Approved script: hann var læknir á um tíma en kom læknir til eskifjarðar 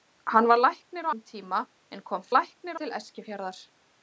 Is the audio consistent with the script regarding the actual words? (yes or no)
yes